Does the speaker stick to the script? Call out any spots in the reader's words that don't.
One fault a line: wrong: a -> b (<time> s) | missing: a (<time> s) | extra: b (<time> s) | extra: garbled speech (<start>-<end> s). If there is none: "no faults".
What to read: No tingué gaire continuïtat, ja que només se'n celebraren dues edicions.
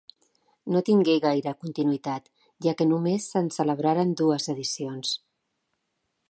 no faults